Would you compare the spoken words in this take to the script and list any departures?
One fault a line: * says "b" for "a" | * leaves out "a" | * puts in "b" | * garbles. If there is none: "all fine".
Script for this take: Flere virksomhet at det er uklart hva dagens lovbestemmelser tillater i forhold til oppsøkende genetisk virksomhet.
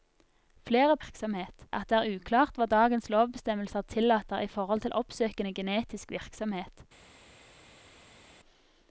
all fine